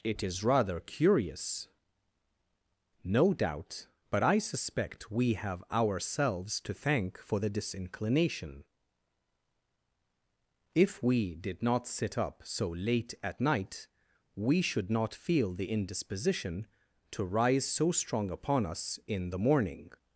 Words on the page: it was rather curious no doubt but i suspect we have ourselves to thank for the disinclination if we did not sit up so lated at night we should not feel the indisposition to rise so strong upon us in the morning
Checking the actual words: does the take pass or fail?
fail